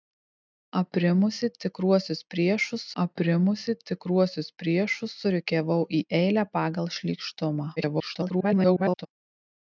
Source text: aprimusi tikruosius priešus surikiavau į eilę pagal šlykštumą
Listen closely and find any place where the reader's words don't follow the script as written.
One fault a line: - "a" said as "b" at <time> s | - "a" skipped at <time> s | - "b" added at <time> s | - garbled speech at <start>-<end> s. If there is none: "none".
- "aprimusi tikruosius priešus" added at 3.0 s
- garbled speech at 7.8-9.1 s